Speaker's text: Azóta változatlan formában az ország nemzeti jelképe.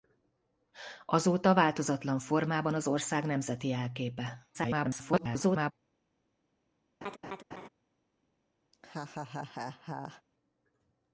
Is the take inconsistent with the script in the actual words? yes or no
yes